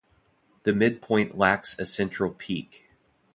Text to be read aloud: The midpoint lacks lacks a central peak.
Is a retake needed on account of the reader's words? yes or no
yes